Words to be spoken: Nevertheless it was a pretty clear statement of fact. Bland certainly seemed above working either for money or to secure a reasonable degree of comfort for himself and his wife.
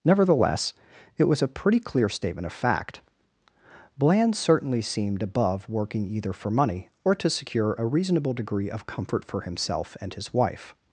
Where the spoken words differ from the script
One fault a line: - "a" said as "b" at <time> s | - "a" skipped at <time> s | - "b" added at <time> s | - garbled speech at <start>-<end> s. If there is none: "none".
none